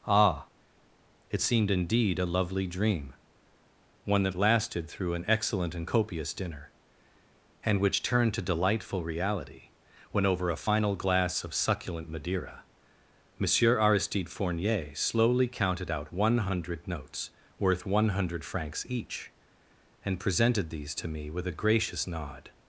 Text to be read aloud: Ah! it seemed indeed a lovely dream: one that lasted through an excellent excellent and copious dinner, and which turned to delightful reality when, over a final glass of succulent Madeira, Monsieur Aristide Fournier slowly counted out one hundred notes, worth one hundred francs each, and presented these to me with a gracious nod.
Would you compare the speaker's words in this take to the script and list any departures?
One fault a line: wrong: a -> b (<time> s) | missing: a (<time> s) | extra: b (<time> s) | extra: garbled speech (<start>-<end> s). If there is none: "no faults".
missing: excellent (5.8 s)